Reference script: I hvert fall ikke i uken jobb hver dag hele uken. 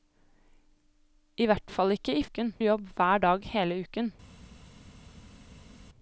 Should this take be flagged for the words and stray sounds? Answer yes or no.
no